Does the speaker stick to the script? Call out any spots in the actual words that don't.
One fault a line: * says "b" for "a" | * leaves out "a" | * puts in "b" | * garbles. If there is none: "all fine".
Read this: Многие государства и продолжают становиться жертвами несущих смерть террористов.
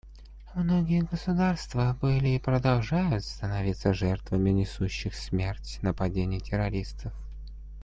* puts in "были"
* puts in "нападений"